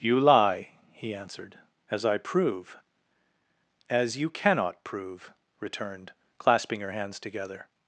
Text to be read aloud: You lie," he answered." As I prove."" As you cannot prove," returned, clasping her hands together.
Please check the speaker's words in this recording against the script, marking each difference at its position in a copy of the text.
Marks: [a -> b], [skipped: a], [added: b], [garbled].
You lie," he answered." As I prove."" As you cannot prove," returned, clasping her hands together.